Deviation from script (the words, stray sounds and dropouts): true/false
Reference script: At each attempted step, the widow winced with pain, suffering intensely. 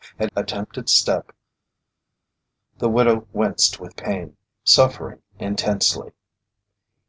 true